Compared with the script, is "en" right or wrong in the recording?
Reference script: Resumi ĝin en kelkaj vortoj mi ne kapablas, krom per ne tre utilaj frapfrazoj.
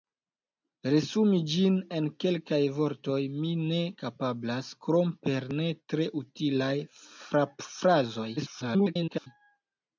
right